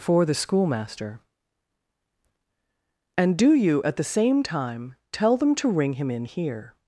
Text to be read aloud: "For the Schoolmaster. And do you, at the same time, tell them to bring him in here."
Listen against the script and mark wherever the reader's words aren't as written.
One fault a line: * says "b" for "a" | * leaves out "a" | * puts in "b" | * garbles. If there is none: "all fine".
* says "ring" for "bring"